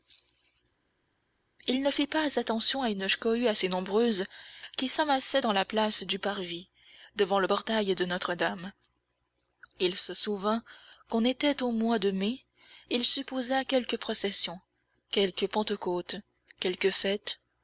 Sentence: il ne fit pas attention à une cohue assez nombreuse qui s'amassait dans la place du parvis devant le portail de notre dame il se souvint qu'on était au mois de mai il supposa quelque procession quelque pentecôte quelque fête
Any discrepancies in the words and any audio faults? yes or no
no